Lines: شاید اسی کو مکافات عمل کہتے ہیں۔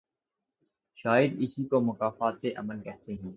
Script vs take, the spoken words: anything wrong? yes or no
no